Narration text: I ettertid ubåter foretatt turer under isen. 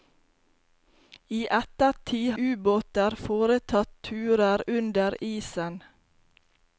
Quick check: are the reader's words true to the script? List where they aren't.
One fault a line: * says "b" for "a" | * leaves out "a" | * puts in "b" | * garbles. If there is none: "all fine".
all fine